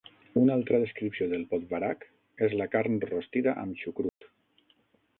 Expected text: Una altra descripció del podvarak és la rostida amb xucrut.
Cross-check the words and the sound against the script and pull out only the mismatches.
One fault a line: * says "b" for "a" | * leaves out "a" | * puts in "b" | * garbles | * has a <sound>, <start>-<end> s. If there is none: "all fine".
* puts in "carn"
* has a dropout, 4.1-4.2 s